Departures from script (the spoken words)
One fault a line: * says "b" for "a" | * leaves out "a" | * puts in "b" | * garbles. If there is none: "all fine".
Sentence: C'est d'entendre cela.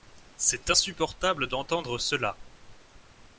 * puts in "insupportable"